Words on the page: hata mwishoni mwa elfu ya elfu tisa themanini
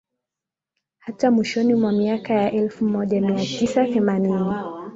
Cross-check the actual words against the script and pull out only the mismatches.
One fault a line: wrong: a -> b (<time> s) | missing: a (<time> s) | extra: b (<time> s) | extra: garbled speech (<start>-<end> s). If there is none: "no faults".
wrong: elfu -> miaka (1.9 s)
extra: moja mia (2.9 s)